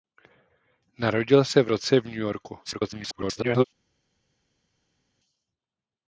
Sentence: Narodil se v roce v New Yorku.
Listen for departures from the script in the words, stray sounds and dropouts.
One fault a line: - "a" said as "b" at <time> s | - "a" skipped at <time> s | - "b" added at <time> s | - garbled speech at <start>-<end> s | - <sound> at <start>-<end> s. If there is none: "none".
- garbled speech at 2.6-3.6 s